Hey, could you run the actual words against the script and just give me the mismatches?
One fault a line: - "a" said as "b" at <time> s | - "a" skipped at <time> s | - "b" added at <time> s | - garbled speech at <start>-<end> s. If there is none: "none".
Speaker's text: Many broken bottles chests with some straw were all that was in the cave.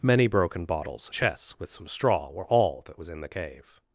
none